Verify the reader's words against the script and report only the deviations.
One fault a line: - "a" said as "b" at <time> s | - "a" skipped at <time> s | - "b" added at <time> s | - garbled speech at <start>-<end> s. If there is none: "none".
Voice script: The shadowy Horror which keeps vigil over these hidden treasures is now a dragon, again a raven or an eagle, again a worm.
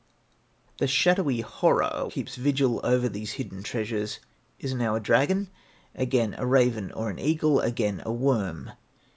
- "which" skipped at 2.1 s